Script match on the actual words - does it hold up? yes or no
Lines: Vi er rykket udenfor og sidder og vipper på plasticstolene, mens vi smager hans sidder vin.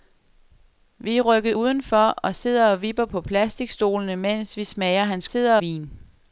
yes